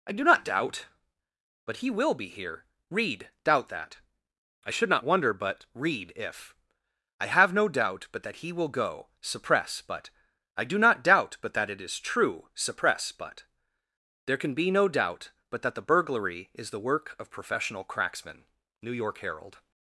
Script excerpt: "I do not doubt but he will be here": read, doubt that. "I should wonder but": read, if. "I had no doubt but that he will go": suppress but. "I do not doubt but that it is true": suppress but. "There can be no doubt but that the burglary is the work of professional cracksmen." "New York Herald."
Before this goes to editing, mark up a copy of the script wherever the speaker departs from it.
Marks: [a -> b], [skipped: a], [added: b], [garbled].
"I do not doubt but he will be here": read, doubt that. "I should [added: not] wonder but": read, if. "I [had -> have] no doubt but that he will go": suppress but. "I do not doubt but that it is true": suppress but. "There can be no doubt but that the burglary is the work of professional cracksmen." "New York Herald."